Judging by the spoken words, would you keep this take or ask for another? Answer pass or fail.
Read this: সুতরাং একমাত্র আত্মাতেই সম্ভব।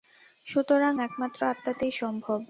pass